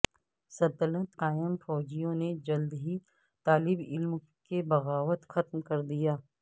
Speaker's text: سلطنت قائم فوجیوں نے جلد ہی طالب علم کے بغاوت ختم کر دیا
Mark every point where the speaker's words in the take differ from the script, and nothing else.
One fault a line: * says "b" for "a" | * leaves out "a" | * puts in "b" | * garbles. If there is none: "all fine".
all fine